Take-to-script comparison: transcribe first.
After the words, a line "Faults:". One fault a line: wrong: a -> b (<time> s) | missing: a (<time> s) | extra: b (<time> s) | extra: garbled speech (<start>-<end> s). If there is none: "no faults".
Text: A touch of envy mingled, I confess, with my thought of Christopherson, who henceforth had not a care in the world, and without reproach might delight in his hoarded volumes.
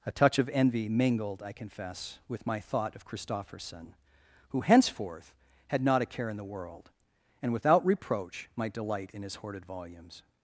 A touch of envy mingled, I confess, with my thought of Christopherson, who henceforth had not a care in the world, and without reproach might delight in his hoarded volumes.
Faults:
no faults